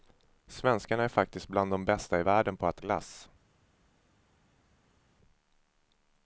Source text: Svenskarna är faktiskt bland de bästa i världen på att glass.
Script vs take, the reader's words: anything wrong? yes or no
no